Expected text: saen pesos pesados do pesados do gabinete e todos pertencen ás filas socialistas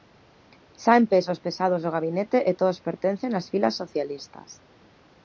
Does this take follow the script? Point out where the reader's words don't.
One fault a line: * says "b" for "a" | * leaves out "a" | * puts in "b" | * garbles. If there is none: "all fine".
* leaves out "pesados do"